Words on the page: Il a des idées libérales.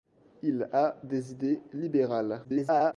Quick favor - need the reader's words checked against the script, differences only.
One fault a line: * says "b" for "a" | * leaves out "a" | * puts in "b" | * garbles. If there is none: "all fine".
* garbles